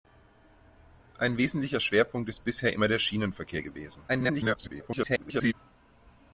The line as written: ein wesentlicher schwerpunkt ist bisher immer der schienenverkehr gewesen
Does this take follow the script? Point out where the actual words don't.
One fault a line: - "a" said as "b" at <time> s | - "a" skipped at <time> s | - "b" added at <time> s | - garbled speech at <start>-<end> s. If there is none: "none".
- garbled speech at 4.1-5.5 s